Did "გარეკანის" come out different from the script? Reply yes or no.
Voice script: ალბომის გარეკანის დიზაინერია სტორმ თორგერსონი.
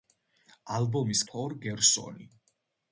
yes